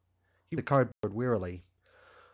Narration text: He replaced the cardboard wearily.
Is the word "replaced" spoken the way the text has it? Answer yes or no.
no